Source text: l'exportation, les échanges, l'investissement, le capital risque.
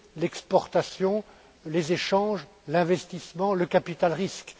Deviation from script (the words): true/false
false